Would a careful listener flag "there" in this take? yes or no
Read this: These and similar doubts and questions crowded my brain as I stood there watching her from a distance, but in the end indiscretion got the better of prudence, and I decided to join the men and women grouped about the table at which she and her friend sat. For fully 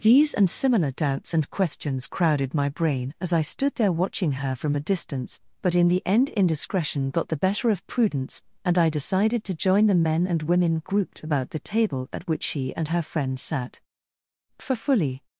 no